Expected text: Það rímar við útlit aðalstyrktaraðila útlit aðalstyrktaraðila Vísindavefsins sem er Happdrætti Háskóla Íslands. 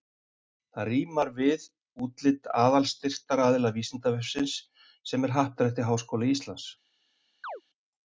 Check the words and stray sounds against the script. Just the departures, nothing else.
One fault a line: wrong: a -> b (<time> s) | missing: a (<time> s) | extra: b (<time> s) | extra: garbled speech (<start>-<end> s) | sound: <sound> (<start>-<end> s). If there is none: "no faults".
missing: útlit aðalstyrktaraðila (3.7 s)
sound: chirp (7.4-7.6 s)